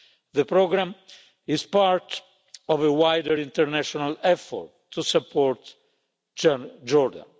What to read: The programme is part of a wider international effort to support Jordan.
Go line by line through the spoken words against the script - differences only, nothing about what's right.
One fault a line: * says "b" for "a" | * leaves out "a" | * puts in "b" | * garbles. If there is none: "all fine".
all fine